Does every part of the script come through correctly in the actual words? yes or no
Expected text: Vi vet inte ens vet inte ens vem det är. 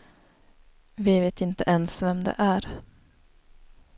no